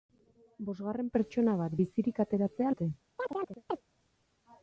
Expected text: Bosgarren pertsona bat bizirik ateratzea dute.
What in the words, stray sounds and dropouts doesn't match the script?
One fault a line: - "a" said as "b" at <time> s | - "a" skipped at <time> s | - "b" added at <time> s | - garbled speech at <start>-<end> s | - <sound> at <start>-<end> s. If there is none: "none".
- chirp at 3.2-3.8 s